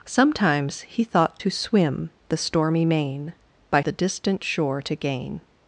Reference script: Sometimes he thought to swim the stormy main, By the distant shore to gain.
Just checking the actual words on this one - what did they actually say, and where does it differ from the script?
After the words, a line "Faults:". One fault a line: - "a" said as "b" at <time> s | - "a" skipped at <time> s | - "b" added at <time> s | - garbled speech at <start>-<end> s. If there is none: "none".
Sometimes he thought to swim the stormy main, By the distant shore to gain.
Faults:
none